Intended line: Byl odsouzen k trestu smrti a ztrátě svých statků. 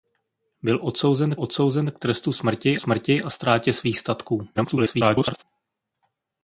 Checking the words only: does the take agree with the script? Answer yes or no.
no